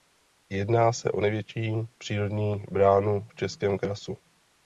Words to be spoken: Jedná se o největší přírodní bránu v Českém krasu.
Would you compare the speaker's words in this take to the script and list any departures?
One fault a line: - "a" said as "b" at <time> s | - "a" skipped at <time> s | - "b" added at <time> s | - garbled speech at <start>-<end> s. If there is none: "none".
none